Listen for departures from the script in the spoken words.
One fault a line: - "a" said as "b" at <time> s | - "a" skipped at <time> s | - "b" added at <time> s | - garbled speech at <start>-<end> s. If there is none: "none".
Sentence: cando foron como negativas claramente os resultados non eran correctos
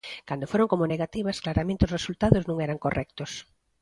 none